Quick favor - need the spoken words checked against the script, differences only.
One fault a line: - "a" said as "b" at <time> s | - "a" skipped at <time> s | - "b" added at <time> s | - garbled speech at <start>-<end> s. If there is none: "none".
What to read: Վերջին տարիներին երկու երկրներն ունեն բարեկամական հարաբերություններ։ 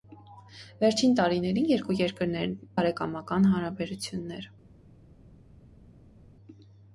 - "ունեն" skipped at 2.6 s